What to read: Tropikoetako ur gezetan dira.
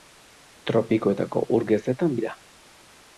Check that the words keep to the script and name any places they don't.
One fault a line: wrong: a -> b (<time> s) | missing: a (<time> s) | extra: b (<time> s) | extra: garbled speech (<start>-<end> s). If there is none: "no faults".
no faults